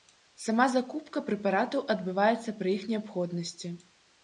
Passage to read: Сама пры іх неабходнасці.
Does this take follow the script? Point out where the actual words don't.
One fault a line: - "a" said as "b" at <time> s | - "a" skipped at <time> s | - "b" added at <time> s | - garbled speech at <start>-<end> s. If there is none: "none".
- "закупка прэпаратаў адбываецца" added at 0.8 s